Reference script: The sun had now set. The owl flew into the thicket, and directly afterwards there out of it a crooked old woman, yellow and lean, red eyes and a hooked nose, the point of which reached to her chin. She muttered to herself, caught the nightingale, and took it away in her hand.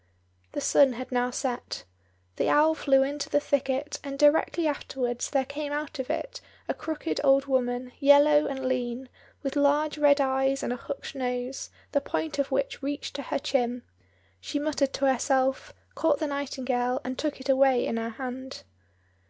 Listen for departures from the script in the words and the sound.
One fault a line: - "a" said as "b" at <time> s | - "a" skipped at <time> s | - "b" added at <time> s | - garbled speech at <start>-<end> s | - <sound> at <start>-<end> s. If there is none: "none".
- "came" added at 5.5 s
- "with large" added at 9.4 s